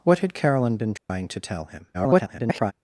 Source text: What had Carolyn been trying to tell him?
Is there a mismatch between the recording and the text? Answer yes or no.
yes